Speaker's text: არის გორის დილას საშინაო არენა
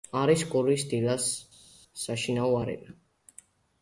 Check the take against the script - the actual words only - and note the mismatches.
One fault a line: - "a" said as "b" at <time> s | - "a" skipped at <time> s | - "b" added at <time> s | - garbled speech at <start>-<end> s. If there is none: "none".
none